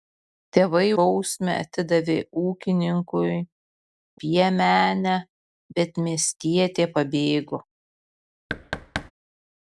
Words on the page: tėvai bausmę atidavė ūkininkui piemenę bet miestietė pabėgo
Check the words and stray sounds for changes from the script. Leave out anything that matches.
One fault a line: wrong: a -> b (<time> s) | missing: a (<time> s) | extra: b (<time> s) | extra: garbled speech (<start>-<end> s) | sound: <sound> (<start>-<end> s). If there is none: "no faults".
sound: thud (8.5-9.1 s)